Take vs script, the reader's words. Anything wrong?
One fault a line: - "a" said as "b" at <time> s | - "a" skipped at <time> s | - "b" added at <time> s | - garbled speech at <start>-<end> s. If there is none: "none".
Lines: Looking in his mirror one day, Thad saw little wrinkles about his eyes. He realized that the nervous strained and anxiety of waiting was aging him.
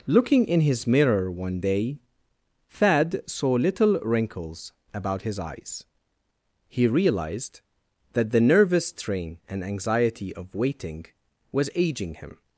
- "strained" said as "strain" at 8.9 s